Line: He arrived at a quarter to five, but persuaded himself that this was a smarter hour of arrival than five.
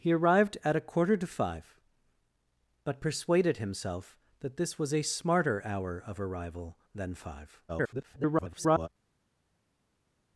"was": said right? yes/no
yes